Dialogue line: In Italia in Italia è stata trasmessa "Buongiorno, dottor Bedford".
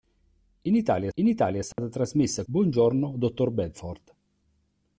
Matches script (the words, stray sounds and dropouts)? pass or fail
fail